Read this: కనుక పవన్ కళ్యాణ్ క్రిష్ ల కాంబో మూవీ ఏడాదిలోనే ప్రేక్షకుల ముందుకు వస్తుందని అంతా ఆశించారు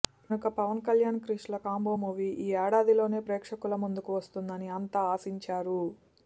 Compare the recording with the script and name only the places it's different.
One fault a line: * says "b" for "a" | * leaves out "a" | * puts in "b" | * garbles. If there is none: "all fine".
* puts in "ఈ"